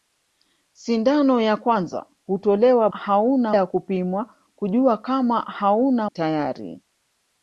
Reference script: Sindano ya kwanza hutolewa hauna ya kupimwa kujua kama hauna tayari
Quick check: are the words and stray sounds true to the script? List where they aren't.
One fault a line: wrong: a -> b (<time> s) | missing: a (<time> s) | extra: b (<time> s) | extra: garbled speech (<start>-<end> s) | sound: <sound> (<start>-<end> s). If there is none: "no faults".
no faults